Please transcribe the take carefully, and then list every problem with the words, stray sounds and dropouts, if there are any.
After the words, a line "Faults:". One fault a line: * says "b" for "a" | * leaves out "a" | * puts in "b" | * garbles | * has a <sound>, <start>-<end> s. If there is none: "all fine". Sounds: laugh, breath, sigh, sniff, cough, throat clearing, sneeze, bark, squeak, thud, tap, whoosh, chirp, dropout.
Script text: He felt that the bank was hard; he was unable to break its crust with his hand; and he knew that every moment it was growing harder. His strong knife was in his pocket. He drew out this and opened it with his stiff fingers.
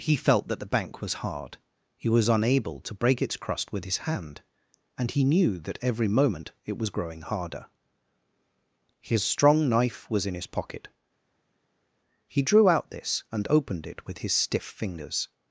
He felt that the bank was hard; he was unable to break its crust with his hand; and he knew that every moment it was growing harder. His strong knife was in his pocket. He drew out this and opened it with his stiff fingers.
Faults:
all fine